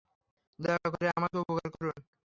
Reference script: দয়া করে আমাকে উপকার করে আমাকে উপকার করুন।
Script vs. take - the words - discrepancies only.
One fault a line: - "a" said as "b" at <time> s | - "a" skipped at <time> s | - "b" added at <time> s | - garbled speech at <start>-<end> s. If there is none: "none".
- "করে আমাকে উপকার" skipped at 1.7 s